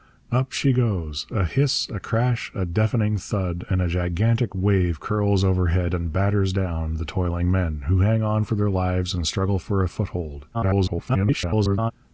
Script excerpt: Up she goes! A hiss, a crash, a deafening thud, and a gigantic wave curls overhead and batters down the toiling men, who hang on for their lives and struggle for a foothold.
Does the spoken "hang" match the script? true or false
true